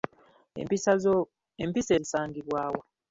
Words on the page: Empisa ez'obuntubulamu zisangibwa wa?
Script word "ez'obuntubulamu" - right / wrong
wrong